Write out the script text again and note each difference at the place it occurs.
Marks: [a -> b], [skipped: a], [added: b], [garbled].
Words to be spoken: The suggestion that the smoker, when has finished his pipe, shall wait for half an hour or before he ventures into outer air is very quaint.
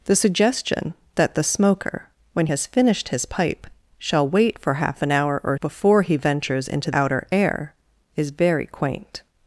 The suggestion that the smoker, when has finished his pipe, shall wait for half an hour or before he ventures into outer air is very quaint.